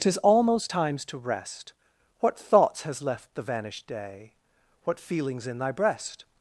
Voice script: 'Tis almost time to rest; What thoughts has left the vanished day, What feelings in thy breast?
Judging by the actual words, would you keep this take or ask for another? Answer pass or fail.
fail